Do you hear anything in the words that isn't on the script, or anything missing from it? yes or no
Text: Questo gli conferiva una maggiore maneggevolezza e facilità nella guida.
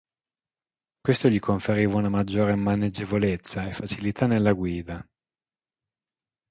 no